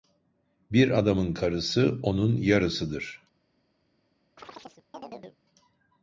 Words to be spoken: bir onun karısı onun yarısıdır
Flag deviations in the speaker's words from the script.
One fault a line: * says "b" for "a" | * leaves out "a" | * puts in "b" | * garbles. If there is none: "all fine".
* says "adamın" for "onun"